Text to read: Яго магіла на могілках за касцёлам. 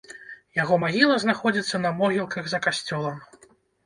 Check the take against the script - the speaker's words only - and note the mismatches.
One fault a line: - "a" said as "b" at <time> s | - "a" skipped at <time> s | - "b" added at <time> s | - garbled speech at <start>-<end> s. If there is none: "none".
- "знаходзіцца" added at 1.2 s